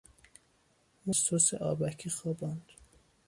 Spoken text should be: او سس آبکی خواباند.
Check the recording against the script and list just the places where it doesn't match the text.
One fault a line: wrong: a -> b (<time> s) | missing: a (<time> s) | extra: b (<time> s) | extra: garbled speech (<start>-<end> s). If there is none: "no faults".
no faults